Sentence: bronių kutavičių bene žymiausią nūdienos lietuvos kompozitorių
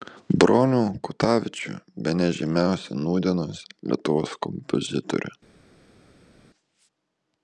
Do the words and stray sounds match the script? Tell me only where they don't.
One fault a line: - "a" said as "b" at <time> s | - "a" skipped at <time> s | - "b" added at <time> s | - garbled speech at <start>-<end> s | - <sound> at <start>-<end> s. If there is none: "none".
none